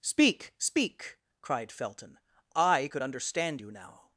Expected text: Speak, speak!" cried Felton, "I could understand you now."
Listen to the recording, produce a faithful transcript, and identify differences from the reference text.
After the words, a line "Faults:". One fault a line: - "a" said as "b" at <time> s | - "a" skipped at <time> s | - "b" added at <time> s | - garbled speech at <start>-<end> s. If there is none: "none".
Speak, speak!" cried Felton, "I could understand you now."
Faults:
none